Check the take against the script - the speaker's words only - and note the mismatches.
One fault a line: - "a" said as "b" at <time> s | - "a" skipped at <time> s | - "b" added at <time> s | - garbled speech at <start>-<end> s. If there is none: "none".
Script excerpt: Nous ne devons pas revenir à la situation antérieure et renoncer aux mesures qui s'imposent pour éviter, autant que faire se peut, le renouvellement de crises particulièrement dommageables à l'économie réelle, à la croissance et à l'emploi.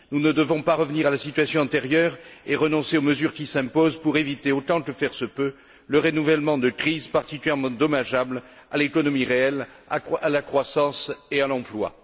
none